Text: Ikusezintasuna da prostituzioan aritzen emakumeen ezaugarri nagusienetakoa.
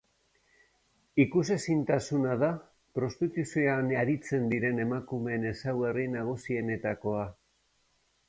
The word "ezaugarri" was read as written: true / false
true